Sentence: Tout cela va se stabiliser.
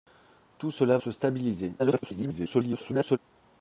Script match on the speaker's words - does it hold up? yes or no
no